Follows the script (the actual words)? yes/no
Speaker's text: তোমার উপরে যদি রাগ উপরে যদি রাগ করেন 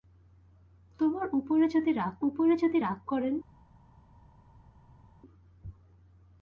yes